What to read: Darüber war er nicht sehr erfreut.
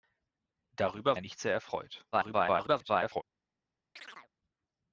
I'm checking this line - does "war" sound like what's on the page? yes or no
no